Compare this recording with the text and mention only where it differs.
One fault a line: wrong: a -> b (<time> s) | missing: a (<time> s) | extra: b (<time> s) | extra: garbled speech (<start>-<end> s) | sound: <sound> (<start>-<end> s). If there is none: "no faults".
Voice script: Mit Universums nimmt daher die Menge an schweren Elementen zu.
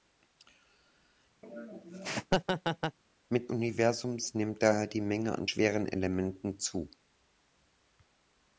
sound: laugh (1.4-3.0 s)